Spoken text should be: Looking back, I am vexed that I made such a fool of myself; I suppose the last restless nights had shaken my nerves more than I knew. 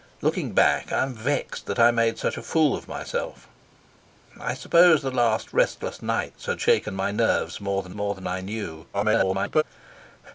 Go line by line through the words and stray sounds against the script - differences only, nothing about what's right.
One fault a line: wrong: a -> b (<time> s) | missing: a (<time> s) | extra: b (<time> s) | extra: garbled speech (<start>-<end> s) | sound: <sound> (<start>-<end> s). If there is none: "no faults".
extra: more than (7.9 s)
extra: garbled speech (8.9-9.6 s)